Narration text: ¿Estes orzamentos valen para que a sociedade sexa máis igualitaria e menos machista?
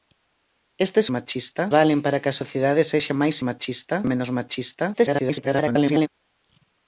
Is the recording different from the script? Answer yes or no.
yes